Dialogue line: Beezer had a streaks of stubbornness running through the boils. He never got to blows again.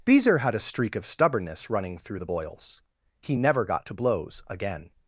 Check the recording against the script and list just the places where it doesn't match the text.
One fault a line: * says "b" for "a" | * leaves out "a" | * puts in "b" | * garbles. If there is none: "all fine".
* says "streak" for "streaks"